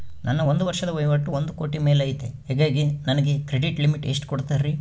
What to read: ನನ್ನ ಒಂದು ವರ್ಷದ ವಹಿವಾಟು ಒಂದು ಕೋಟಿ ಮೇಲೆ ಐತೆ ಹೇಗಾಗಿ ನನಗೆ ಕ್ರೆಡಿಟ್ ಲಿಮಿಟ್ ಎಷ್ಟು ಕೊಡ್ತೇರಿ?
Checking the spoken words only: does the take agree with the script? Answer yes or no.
yes